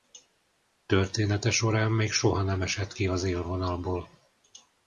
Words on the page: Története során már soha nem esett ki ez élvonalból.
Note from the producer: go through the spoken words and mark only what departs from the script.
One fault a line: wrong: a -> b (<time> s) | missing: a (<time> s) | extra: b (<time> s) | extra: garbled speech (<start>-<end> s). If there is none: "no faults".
wrong: már -> még (1.9 s)
wrong: ez -> az (3.1 s)